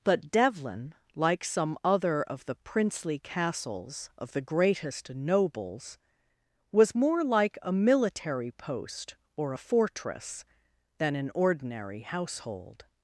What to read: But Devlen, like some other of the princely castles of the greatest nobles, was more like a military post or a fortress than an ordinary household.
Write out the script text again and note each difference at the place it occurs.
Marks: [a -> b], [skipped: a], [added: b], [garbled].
But Devlen, like some other of the princely castles of the greatest nobles, was more like a military post or a fortress than an ordinary household.